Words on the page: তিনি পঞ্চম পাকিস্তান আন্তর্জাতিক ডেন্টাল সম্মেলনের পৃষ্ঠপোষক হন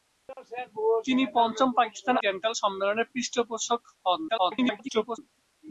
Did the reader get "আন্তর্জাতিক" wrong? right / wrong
wrong